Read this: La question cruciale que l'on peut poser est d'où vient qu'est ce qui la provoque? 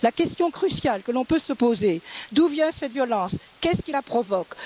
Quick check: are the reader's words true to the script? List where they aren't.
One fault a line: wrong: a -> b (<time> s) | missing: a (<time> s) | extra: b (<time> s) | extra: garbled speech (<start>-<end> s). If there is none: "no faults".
extra: se (1.4 s)
extra: cette violence (2.7 s)